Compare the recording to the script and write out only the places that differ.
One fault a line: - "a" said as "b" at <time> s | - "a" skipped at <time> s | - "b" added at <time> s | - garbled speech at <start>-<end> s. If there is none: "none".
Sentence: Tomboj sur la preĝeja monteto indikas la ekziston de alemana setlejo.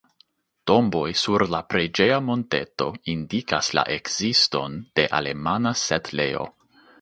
none